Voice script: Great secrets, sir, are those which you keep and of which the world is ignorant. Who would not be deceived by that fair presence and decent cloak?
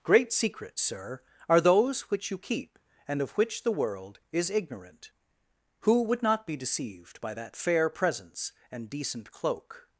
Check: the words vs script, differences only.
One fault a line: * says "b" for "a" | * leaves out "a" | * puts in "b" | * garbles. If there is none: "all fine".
all fine